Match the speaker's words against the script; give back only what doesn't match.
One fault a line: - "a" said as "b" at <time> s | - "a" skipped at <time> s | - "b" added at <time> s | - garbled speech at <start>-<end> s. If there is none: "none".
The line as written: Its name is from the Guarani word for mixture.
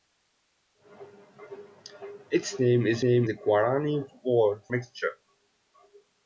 - "from" said as "name" at 3.0 s
- "for" skipped at 4.6 s